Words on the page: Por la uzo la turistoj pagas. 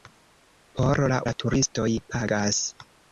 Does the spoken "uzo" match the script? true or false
false